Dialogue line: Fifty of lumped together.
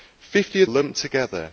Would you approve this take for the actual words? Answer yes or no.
yes